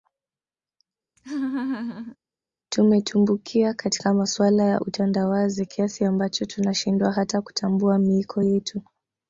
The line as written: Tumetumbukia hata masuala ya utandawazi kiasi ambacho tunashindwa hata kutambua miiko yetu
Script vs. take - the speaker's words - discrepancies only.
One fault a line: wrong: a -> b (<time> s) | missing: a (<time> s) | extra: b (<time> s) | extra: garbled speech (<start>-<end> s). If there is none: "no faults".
wrong: hata -> katika (3.7 s)